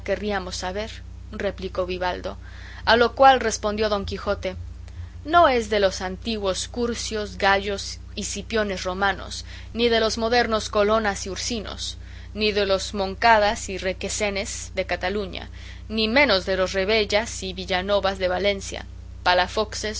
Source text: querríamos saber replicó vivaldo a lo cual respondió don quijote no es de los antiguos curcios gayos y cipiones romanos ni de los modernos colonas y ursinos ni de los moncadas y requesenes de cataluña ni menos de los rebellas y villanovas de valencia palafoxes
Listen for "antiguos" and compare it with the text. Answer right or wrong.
right